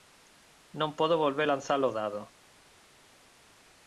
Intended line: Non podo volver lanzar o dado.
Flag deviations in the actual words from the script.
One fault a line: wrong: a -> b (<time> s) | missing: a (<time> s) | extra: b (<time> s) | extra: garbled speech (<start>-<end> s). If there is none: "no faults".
no faults